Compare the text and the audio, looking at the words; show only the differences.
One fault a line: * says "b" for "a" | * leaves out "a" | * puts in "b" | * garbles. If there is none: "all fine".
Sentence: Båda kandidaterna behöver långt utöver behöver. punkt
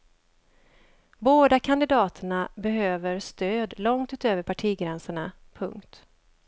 * puts in "stöd"
* says "partigränserna" for "behöver"